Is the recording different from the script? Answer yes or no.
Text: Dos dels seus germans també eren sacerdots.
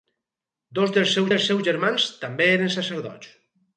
yes